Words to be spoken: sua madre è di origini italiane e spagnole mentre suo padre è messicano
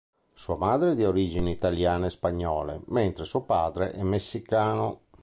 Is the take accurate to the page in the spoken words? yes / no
yes